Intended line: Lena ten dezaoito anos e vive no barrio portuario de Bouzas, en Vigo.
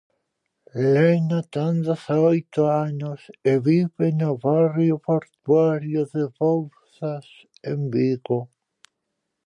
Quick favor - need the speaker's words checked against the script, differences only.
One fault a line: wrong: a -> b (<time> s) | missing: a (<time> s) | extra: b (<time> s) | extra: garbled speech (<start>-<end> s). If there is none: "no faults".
no faults